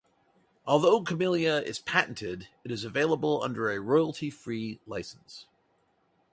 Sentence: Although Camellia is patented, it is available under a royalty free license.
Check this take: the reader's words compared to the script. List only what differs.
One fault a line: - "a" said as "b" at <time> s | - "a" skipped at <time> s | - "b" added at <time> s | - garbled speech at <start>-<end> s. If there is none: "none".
none